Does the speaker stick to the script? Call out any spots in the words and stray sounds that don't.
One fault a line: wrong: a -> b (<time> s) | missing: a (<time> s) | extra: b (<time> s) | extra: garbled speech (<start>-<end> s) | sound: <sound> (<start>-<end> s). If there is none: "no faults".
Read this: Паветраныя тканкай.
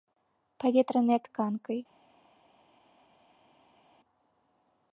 no faults